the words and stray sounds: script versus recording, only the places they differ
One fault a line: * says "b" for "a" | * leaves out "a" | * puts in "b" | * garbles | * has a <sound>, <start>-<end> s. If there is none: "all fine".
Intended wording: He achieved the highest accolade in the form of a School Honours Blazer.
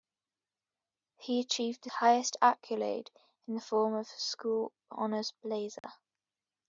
* has a dropout, 5.8-5.8 s